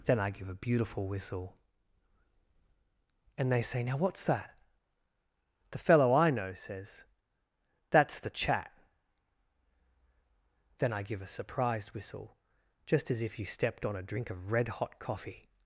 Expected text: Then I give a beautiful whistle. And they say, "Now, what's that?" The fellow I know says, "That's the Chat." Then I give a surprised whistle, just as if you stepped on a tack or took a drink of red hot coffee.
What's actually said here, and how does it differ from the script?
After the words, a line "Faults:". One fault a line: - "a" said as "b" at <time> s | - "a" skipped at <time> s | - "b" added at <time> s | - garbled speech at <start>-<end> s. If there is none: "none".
Then I give a beautiful whistle. And they say, "Now, what's that?" The fellow I know says, "That's the Chat." Then I give a surprised whistle, just as if you stepped on a drink of red hot coffee.
Faults:
- "tack or took a" skipped at 14.0 s